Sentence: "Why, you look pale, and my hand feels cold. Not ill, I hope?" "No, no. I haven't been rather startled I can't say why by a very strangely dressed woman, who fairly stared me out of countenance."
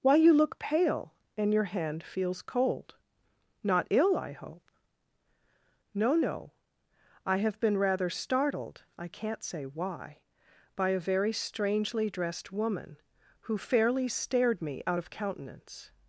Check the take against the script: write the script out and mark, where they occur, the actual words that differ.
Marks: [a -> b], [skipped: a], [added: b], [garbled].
"Why, you look pale, and [my -> your] hand feels cold. Not ill, I hope?" "No, no. I [haven't -> have] been rather startled I can't say why by a very strangely dressed woman, who fairly stared me out of countenance."